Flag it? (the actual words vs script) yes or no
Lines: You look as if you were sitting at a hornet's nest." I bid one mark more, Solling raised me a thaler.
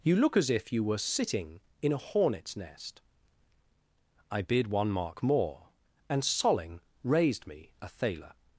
yes